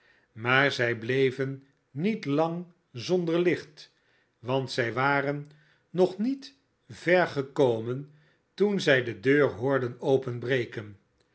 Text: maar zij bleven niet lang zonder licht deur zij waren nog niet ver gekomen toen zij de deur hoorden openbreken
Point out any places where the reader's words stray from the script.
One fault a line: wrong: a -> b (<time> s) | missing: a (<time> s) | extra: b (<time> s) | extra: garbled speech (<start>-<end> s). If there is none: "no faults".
wrong: deur -> want (4.4 s)